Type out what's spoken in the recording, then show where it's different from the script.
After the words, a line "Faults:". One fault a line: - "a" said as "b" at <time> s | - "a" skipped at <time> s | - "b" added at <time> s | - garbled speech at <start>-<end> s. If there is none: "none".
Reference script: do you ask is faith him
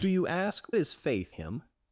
do you ask is faith him
Faults:
none